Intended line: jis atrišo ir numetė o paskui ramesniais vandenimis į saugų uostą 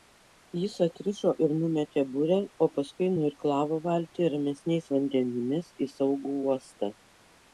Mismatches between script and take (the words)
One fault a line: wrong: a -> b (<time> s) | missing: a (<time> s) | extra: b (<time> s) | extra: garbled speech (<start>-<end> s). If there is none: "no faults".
extra: burę (2.1 s)
extra: nuirklavo valtį (3.1 s)